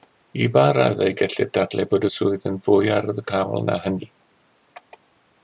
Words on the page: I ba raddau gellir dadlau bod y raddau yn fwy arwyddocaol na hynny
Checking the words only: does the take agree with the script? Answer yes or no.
no